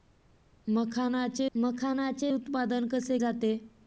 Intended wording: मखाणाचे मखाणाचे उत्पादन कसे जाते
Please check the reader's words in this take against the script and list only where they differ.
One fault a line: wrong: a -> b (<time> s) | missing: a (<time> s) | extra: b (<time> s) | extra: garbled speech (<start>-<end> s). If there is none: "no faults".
no faults